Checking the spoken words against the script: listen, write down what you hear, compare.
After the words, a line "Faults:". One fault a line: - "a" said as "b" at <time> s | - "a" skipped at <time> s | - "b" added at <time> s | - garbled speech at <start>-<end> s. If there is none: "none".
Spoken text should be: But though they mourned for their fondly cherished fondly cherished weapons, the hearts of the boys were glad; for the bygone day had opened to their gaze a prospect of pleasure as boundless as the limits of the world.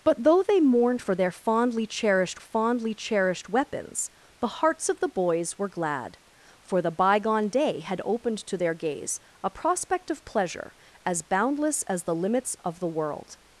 But though they mourned for their fondly cherished fondly cherished weapons, the hearts of the boys were glad; for the bygone day had opened to their gaze a prospect of pleasure as boundless as the limits of the world.
Faults:
none